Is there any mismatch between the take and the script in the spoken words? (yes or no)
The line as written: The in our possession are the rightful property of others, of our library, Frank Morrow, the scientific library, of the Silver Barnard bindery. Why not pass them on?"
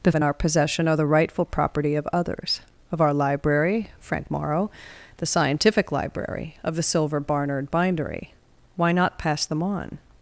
no